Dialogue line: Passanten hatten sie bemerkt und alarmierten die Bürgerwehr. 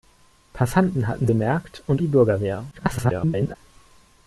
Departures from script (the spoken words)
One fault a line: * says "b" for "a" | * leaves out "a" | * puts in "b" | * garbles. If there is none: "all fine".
* leaves out "sie"
* leaves out "alarmierten"
* garbles